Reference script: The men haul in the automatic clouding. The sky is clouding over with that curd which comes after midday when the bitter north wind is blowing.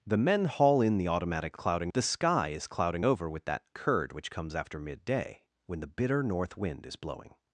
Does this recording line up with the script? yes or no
yes